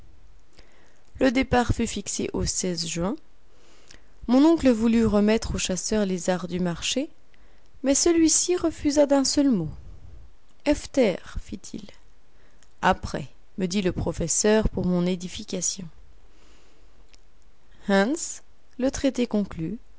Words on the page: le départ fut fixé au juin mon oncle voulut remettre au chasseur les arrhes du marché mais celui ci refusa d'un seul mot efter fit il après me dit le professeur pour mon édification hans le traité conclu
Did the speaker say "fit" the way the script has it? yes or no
yes